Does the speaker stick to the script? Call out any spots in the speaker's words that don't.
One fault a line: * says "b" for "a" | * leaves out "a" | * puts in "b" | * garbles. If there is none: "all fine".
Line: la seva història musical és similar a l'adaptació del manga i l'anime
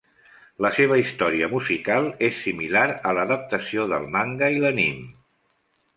all fine